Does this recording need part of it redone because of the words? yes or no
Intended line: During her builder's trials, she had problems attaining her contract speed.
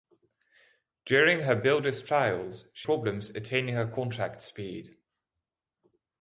yes